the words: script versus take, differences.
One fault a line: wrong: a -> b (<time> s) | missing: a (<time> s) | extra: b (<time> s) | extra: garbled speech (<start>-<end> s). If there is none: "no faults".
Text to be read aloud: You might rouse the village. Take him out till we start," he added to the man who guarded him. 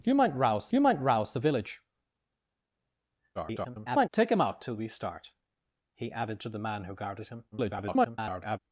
extra: you might rouse (0.7 s)
extra: garbled speech (3.3-4.1 s)
extra: garbled speech (7.5-8.6 s)